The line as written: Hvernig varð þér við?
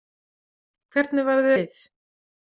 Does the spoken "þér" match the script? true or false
false